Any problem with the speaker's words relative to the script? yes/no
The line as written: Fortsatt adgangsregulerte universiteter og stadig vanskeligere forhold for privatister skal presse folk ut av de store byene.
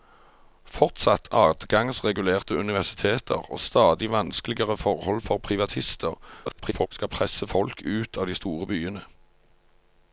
yes